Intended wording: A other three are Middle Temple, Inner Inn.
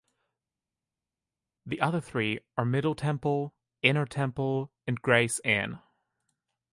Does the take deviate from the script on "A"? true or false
true